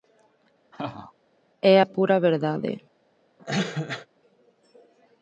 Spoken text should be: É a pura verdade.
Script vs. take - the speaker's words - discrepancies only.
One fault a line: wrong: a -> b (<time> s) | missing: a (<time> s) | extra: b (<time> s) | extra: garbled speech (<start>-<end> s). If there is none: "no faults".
no faults